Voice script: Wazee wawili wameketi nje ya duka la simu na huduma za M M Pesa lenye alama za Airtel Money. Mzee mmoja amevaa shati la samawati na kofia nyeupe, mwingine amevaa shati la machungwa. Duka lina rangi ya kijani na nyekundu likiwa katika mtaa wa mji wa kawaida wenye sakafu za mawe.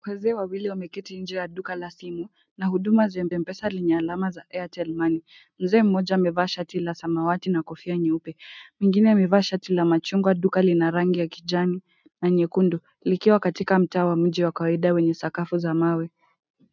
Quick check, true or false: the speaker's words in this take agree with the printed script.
true